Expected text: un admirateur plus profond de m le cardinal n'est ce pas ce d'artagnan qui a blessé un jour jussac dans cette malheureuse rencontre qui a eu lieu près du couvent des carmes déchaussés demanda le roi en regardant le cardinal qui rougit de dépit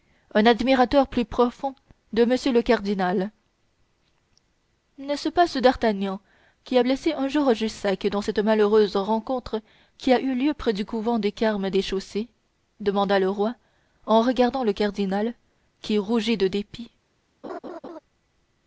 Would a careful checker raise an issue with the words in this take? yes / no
no